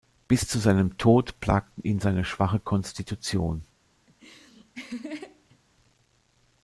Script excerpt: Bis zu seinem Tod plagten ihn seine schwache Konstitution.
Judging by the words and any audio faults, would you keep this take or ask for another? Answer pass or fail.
fail